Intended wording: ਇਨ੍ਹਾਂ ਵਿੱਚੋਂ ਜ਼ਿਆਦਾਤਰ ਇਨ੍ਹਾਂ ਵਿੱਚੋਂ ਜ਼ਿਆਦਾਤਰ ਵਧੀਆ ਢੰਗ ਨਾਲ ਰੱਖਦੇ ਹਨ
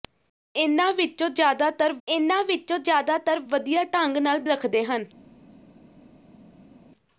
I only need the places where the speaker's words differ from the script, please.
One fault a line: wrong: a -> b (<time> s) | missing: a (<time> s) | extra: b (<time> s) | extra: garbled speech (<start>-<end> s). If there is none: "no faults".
no faults